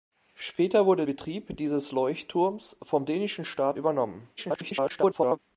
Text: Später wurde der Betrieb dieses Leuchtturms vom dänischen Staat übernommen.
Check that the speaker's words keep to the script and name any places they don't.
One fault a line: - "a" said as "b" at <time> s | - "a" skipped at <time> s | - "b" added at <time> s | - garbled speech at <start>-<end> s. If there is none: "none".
- "der" skipped at 1.1 s
- garbled speech at 4.4-5.4 s